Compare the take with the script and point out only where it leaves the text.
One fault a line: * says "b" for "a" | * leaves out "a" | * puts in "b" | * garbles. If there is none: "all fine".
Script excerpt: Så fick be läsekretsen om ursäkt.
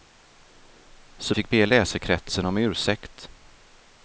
all fine